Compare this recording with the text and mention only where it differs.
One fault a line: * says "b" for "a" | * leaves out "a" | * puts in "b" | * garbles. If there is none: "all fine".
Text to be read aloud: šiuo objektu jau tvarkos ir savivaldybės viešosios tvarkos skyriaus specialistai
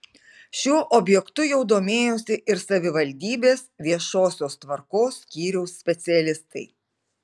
* says "domėjosi" for "tvarkos"